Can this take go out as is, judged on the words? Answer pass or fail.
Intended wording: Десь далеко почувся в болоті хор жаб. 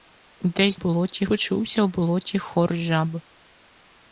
fail